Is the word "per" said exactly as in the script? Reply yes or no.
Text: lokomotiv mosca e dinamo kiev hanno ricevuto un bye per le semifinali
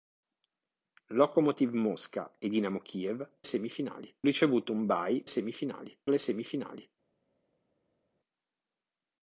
no